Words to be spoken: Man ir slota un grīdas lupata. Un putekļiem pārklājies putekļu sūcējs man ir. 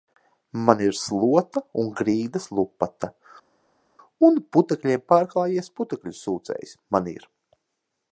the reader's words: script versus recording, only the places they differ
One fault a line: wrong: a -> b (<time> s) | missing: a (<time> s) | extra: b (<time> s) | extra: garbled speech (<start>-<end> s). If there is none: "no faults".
no faults